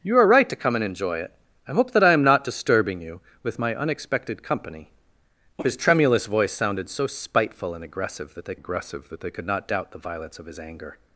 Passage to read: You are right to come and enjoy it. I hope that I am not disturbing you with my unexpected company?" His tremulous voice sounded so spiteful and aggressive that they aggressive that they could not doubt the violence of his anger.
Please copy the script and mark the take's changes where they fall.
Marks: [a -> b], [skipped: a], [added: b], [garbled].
You are right to come and enjoy it. I hope that I am not disturbing you with my unexpected company?" His tremulous voice sounded so spiteful and aggressive that they aggressive that they could not doubt the violence of his anger.